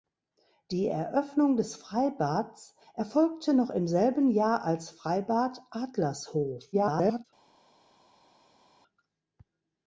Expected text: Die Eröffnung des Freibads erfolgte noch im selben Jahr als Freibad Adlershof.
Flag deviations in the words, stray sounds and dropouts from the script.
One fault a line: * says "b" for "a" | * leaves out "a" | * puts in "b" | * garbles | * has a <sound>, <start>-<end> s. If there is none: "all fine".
* garbles